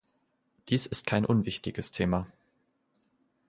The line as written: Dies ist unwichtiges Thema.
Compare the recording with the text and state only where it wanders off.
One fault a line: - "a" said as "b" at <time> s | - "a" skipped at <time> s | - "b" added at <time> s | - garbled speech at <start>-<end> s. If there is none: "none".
- "kein" added at 1.1 s